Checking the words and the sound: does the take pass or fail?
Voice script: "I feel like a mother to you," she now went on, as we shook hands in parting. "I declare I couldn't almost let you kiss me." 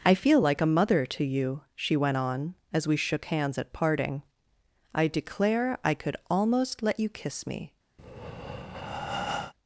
fail